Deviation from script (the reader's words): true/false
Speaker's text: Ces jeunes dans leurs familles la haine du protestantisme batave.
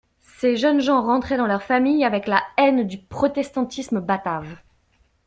true